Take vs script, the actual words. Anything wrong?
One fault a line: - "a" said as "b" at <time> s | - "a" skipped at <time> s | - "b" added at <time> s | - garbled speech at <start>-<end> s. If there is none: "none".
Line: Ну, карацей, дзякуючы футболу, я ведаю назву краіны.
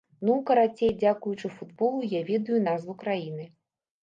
none